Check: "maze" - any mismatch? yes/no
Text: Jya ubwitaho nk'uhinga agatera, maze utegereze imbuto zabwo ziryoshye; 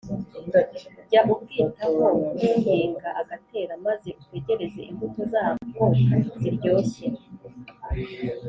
no